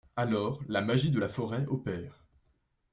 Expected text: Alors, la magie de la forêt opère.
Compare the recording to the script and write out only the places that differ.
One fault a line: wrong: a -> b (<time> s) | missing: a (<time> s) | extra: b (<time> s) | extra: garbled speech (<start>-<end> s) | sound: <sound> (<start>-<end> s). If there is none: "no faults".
no faults